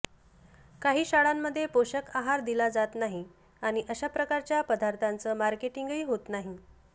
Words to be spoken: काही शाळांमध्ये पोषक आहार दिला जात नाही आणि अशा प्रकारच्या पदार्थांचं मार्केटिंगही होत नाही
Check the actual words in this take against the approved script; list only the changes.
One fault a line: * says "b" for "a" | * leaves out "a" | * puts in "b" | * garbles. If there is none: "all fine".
all fine